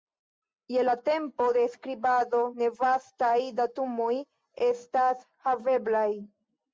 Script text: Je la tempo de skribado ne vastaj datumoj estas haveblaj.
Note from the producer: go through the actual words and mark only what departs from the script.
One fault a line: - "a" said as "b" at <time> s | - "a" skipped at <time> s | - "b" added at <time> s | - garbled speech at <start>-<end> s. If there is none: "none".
none